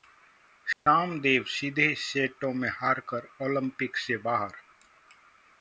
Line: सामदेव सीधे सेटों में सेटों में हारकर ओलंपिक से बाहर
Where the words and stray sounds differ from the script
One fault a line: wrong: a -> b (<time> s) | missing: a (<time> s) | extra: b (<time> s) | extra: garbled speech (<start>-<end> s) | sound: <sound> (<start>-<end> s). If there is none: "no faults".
sound: dropout (0.7-0.9 s)
missing: सेटों में (2.7 s)